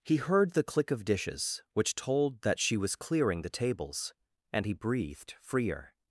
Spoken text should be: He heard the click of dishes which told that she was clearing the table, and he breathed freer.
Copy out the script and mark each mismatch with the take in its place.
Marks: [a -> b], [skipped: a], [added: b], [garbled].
He heard the click of dishes which told that she was clearing the [table, -> tables] and he breathed freer.